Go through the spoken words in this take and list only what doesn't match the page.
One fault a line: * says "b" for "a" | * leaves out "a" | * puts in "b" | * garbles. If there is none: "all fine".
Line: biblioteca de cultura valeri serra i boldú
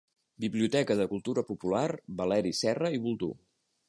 * puts in "popular"